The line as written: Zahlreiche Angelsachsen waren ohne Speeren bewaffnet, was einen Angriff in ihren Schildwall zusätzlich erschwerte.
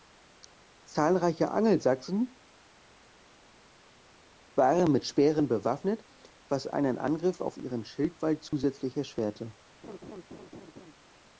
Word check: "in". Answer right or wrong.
wrong